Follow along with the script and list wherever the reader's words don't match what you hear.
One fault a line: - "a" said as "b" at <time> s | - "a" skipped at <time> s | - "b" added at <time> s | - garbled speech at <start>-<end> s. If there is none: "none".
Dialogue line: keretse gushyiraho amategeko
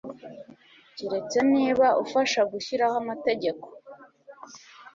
- "niba ufasha" added at 1.5 s